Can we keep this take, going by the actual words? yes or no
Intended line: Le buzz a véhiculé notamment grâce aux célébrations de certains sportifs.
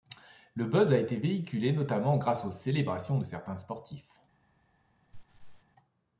no